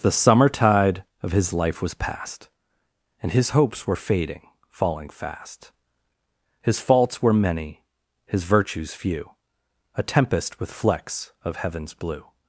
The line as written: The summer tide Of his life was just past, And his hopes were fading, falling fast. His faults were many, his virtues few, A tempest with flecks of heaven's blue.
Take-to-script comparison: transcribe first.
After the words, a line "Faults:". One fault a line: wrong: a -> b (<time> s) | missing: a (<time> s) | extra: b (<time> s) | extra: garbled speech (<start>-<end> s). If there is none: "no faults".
The summer tide Of his life was past, And his hopes were fading, falling fast. His faults were many, his virtues few, A tempest with flecks of heaven's blue.
Faults:
missing: just (1.9 s)